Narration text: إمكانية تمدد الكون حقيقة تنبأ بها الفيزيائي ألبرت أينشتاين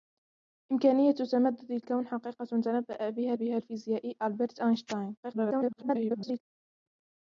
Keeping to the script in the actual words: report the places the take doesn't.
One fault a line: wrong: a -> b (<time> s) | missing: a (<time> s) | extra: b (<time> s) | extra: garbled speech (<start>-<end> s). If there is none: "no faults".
extra: بها (3.3 s)
extra: garbled speech (5.2-6.4 s)